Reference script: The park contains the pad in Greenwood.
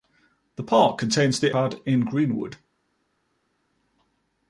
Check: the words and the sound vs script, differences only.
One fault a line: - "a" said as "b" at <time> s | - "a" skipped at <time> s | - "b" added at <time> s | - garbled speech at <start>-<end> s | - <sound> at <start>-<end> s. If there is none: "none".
none